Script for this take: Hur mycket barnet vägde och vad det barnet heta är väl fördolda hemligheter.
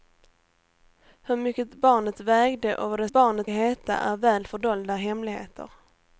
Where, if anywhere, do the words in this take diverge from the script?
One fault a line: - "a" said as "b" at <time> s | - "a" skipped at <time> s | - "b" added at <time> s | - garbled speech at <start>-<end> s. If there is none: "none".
none